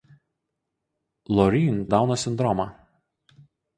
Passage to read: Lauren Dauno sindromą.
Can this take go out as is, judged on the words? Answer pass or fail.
pass